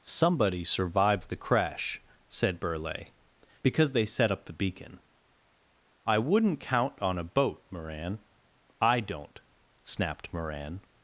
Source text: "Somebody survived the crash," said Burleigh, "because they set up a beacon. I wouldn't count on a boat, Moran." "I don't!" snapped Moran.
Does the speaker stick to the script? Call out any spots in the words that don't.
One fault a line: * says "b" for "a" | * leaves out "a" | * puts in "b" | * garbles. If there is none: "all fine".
* says "the" for "a"